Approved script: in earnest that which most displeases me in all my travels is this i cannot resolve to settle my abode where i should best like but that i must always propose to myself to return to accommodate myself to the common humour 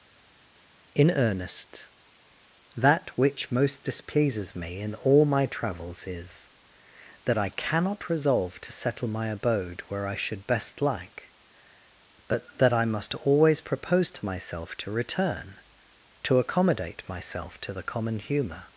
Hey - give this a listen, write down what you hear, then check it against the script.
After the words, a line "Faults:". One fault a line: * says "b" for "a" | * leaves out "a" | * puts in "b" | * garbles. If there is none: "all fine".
in earnest that which most displeases me in all my travels is that i cannot resolve to settle my abode where i should best like but that i must always propose to myself to return to accommodate myself to the common humour
Faults:
* says "that" for "this"